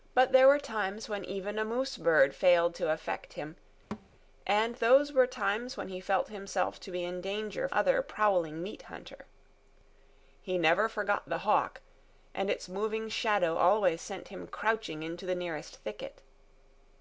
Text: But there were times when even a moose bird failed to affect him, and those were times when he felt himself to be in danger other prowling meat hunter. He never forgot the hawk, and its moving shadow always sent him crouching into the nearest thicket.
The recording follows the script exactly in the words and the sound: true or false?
false